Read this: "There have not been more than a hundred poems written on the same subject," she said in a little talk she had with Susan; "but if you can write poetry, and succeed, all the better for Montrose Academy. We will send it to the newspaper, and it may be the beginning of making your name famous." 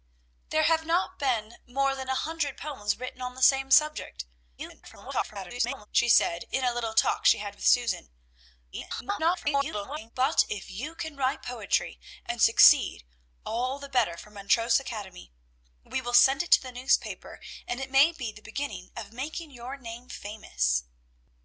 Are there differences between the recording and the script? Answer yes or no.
yes